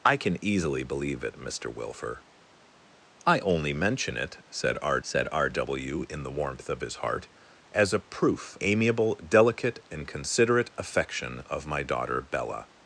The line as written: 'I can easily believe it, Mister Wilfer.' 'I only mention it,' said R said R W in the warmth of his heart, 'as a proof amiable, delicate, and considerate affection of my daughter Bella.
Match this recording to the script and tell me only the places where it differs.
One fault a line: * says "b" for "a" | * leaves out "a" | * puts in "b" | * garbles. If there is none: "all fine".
all fine